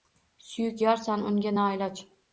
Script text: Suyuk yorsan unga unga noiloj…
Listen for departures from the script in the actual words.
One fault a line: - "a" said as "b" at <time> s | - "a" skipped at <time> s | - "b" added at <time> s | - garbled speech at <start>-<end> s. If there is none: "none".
- "unga" skipped at 1.5 s